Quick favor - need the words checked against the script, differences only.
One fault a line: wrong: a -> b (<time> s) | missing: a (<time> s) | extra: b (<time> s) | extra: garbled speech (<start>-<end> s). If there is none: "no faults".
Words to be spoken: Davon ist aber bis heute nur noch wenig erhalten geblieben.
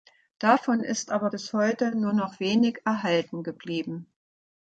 no faults